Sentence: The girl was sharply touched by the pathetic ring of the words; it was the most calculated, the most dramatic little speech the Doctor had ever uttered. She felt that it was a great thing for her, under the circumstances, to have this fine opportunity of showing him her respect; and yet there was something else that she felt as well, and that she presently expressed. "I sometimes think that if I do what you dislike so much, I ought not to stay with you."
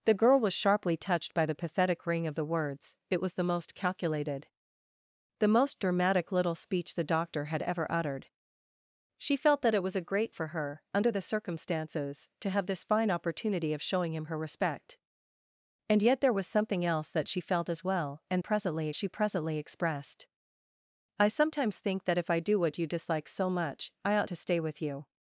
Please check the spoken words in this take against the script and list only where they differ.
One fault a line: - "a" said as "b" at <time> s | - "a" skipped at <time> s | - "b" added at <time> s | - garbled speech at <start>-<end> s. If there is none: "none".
- "thing" skipped at 10.3 s
- "that" said as "presently" at 18.4 s
- "not" skipped at 24.3 s